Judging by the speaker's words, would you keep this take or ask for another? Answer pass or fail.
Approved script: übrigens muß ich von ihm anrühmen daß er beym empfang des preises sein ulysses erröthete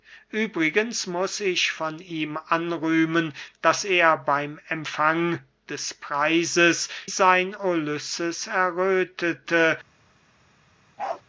pass